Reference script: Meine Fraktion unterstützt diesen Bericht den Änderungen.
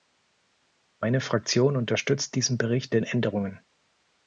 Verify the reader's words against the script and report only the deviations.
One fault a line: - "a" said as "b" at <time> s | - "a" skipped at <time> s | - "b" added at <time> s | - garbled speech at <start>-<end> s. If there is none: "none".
none